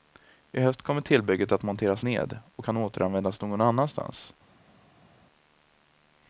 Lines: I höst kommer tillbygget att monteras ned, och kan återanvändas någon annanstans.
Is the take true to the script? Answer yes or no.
yes